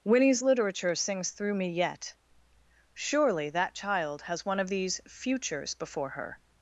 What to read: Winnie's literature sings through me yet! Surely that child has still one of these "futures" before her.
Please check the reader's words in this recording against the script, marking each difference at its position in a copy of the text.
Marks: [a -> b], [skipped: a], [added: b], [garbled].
Winnie's literature sings through me yet! Surely that child has [skipped: still] one of these "futures" before her.